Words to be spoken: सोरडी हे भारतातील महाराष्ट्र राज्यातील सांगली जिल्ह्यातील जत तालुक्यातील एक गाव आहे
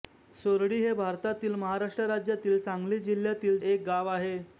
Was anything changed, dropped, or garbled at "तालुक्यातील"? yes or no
yes